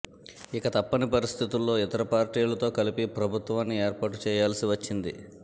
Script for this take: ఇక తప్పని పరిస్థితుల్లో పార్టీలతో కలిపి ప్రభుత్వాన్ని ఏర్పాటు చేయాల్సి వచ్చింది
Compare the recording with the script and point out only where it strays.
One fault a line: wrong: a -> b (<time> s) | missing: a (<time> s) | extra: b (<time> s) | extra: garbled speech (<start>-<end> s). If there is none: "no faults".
extra: ఇతర (1.8 s)